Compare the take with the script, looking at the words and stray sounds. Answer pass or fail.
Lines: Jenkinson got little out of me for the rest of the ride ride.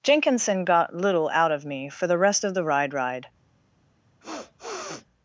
fail